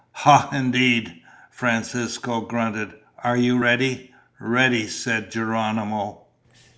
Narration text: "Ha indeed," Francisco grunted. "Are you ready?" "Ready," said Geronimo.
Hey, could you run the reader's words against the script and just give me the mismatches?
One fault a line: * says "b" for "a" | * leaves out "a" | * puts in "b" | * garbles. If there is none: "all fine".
all fine